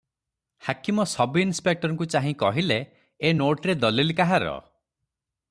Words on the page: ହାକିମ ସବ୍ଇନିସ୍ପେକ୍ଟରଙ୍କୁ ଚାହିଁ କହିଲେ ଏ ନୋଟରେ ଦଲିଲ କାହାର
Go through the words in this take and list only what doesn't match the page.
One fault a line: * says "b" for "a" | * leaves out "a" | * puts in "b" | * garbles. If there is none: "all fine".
all fine